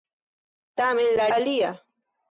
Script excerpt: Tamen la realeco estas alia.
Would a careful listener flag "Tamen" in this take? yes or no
no